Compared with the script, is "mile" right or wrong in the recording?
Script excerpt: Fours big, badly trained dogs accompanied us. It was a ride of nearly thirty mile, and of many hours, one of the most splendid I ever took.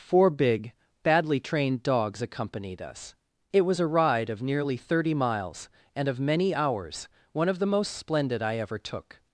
wrong